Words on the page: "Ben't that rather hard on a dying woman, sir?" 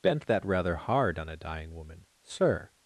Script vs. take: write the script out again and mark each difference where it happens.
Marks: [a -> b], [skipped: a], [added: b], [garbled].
"Ben't that rather hard on a dying woman, sir?"